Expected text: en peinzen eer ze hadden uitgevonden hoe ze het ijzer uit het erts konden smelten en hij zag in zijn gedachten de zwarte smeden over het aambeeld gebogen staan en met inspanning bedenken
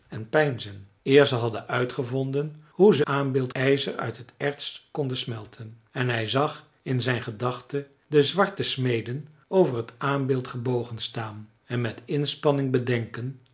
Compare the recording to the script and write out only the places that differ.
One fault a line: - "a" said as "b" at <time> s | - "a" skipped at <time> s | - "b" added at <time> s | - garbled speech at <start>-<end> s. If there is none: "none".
- "het" said as "aambeeld" at 3.0 s